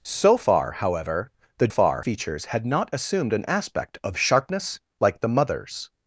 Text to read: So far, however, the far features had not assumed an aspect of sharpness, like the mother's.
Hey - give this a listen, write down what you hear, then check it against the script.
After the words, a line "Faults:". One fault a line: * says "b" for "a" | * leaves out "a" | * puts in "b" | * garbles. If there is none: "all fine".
So far, however, the far features had not assumed an aspect of sharpness, like the mother's.
Faults:
all fine